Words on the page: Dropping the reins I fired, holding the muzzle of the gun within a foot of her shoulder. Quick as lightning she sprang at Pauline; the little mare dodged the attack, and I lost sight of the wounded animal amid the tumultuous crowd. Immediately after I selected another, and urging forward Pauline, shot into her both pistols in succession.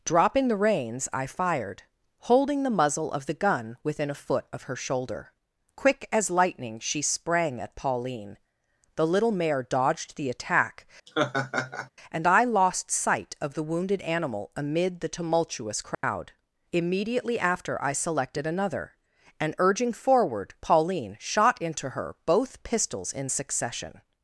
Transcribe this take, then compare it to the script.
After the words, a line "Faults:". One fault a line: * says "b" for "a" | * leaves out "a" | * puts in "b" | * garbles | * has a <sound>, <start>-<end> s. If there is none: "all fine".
Dropping the reins I fired, holding the muzzle of the gun within a foot of her shoulder. Quick as lightning she sprang at Pauline; the little mare dodged the attack, and I lost sight of the wounded animal amid the tumultuous crowd. Immediately after I selected another, and urging forward Pauline, shot into her both pistols in succession.
Faults:
* has a laugh, 11.1-11.9 s
* has a dropout, 15.9-16.0 s